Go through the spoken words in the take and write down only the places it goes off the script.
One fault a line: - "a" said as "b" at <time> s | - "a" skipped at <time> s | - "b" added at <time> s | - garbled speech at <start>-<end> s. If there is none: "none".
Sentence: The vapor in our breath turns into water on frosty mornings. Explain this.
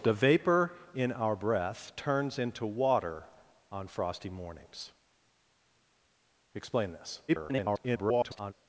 - garbled speech at 7.3-8.5 s